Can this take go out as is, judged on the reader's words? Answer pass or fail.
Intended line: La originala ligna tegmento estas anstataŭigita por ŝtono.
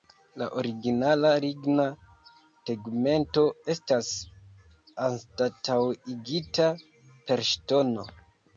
fail